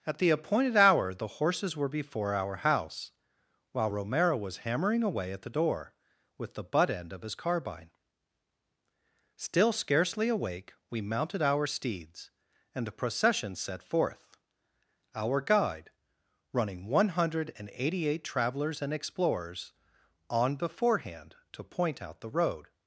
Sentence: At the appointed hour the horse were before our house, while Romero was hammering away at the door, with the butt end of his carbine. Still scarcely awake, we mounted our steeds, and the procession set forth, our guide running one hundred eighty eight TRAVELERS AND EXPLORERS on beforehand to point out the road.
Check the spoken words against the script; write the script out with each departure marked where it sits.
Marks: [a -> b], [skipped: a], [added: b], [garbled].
At the appointed hour the [horse -> horses] were before our house, while Romero was hammering away at the door, with the butt end of his carbine. Still scarcely awake, we mounted our steeds, and the procession set forth, our guide running one hundred eighty eight TRAVELERS AND EXPLORERS on beforehand to point out the road.